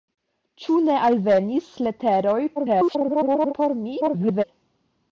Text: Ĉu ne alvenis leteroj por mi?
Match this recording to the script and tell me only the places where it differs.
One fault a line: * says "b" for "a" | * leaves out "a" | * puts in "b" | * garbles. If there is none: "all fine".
* garbles
* garbles